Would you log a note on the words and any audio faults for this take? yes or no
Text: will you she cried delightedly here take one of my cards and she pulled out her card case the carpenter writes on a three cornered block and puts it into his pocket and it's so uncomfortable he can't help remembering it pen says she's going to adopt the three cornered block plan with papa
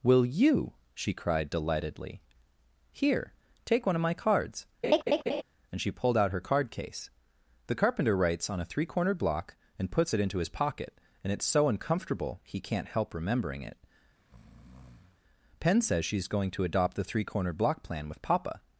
yes